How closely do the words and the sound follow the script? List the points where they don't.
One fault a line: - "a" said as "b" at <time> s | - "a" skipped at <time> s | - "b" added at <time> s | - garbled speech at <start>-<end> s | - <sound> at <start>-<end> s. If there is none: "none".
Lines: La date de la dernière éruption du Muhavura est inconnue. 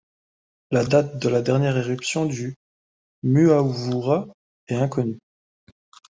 none